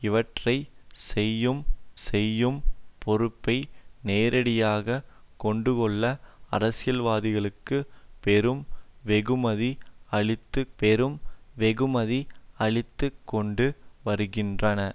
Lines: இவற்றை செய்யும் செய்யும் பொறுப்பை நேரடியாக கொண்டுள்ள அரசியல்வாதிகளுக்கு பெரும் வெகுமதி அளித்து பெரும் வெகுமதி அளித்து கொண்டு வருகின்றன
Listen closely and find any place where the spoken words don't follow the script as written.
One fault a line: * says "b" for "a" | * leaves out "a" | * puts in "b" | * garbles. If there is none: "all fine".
all fine